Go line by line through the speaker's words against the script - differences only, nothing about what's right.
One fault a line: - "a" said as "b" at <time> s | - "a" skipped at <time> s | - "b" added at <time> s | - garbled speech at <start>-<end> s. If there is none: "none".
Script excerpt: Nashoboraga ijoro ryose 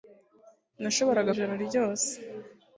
none